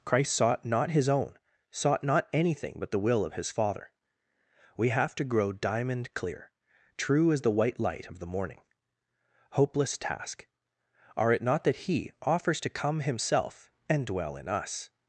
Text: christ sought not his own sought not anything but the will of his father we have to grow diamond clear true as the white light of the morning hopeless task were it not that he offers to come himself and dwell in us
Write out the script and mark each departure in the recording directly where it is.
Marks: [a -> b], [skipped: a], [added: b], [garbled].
christ sought not his own sought not anything but the will of his father we have to grow diamond clear true as the white light of the morning hopeless task [were -> are] it not that he offers to come himself and dwell in us